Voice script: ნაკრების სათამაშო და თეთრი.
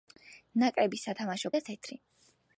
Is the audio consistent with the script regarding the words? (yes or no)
yes